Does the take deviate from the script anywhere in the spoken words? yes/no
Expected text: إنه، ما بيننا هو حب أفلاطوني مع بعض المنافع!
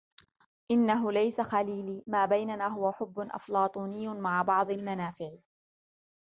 yes